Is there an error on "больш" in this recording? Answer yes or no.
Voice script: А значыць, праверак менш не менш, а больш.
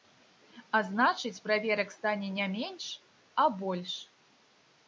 no